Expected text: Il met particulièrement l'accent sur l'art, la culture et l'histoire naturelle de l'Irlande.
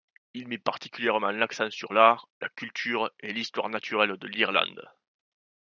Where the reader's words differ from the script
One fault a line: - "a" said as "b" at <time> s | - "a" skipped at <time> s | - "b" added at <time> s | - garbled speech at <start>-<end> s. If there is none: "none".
none